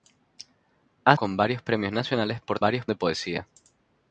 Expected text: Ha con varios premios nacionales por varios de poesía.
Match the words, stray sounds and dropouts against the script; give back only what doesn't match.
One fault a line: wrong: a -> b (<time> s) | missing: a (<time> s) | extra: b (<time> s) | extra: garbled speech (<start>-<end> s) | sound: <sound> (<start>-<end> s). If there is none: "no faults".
no faults